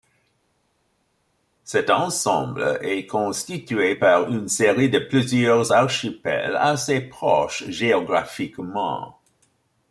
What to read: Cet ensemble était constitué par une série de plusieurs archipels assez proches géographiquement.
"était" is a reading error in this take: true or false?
true